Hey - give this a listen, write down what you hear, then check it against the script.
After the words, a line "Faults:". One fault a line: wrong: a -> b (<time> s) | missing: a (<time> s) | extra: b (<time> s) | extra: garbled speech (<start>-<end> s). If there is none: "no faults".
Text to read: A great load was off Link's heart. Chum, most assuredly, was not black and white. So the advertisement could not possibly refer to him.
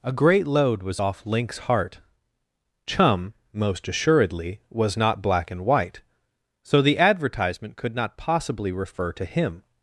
A great load was off Link's heart. Chum, most assuredly, was not black and white. So the advertisement could not possibly refer to him.
Faults:
no faults